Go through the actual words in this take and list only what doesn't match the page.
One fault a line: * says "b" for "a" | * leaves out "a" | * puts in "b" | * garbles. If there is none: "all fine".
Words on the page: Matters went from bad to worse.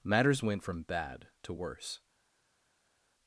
all fine